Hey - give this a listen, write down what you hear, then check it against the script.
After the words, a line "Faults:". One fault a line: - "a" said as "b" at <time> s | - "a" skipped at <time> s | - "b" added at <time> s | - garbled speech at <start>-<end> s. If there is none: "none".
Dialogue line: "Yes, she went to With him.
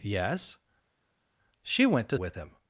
"Yes, she went to With him.
Faults:
none